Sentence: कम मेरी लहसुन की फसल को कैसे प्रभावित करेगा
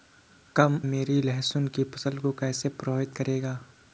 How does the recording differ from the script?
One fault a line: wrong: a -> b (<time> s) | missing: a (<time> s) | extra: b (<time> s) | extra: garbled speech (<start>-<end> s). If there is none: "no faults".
no faults